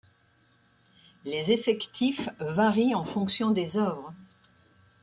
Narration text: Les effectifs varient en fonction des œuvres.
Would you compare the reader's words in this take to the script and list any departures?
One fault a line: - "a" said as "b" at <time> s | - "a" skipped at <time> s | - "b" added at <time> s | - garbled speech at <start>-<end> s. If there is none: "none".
none